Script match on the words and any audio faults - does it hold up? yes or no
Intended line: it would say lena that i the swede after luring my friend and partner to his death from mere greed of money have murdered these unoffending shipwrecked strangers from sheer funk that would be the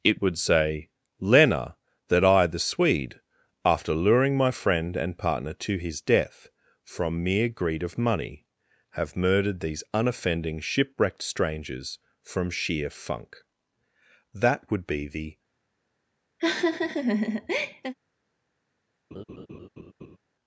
no